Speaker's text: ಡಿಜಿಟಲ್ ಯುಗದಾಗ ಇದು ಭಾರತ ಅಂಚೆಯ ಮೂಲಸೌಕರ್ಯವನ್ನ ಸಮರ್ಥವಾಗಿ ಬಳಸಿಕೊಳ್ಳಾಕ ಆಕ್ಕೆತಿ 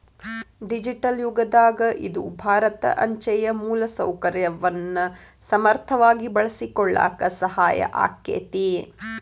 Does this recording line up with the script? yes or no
no